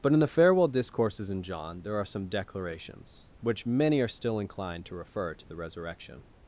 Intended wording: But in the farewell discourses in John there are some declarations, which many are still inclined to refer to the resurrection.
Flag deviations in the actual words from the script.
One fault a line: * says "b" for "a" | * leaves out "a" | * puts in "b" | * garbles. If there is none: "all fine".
all fine